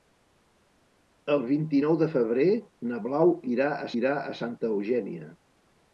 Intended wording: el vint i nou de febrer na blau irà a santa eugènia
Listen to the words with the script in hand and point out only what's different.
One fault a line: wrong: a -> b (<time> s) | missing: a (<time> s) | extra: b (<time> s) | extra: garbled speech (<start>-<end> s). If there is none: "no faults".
extra: irà a (4.0 s)